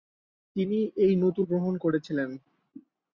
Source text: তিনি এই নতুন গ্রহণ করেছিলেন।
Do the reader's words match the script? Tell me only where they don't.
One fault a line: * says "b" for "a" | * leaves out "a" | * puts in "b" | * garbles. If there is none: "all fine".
all fine